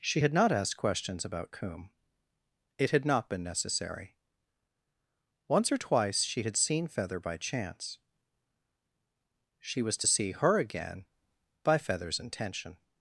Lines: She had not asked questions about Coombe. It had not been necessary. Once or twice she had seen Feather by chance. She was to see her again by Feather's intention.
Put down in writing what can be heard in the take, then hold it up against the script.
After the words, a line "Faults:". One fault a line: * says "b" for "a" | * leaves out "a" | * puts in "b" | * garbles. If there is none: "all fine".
She had not asked questions about Coombe. It had not been necessary. Once or twice she had seen Feather by chance. She was to see her again by Feather's intention.
Faults:
all fine